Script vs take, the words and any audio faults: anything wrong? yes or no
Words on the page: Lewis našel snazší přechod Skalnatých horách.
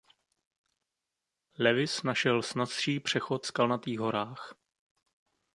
no